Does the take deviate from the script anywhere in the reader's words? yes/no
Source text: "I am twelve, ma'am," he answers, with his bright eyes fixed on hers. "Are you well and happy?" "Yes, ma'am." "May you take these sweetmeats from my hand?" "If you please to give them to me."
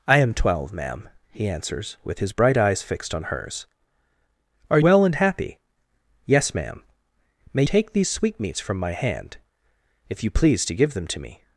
yes